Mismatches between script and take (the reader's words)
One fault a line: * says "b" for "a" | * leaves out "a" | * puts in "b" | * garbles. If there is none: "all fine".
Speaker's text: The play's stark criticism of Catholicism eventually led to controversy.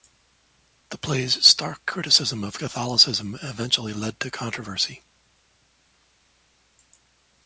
all fine